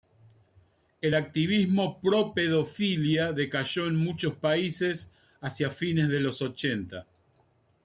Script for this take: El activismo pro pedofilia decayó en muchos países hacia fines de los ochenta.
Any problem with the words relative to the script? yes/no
no